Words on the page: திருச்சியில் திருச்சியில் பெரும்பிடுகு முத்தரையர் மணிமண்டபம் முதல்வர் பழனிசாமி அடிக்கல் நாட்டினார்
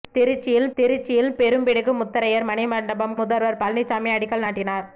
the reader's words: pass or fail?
pass